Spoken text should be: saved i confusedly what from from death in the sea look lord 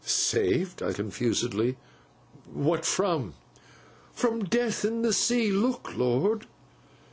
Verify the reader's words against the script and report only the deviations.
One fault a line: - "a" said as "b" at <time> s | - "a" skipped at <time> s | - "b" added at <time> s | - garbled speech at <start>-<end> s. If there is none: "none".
none